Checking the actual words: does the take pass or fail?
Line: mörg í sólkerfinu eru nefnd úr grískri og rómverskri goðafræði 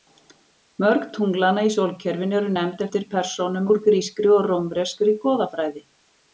fail